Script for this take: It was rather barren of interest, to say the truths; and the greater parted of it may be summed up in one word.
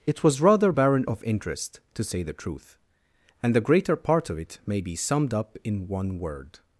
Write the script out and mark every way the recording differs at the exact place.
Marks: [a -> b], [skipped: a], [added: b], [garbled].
It was rather barren of interest, to say the [truths; -> truth] and the greater [parted -> part] of it may be summed up in one word.